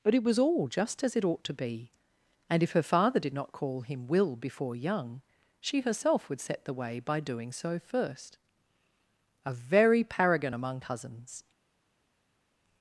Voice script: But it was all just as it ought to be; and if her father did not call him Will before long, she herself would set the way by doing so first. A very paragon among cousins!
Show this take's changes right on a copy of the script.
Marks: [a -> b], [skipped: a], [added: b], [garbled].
But it was all just as it ought to be; and if her father did not call him Will before [long, -> young] she herself would set the way by doing so first. A very paragon among cousins!